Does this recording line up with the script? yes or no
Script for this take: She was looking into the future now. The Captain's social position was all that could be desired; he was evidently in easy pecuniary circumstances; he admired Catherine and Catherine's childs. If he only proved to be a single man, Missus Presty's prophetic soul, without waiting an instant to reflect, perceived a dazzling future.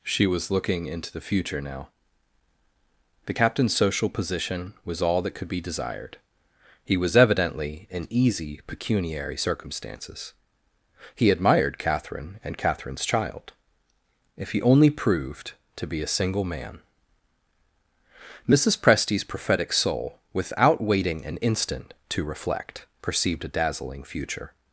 no